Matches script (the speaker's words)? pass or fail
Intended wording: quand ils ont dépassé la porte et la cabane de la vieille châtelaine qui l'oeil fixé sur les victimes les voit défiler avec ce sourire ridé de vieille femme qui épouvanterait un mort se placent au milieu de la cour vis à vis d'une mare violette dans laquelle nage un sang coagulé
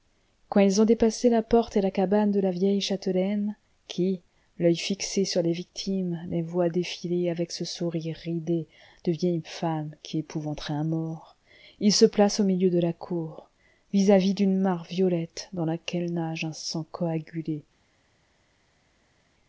fail